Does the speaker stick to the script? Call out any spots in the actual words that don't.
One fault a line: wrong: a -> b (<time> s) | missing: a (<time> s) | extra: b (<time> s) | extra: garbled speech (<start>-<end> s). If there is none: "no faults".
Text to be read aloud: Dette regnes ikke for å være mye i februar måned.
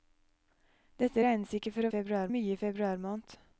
wrong: være -> februar (1.9 s)